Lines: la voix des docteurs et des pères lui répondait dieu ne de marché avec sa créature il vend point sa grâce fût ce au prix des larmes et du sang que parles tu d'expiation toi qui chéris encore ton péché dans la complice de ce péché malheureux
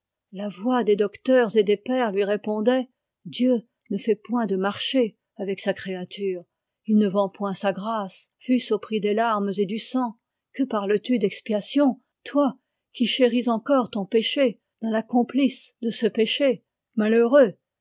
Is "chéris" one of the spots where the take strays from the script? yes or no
no